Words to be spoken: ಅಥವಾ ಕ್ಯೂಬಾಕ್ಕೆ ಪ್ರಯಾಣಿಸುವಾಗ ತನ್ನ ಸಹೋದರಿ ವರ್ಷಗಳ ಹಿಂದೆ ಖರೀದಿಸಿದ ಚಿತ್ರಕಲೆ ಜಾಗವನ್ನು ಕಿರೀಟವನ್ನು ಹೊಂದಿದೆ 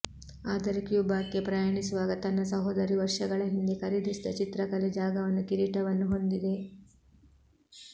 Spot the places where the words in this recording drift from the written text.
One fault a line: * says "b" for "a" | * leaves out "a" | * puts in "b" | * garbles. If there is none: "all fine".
* says "ಆದರೆ" for "ಅಥವಾ"